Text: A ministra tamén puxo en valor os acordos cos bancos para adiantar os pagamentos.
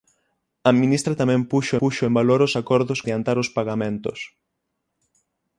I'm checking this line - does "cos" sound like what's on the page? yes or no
no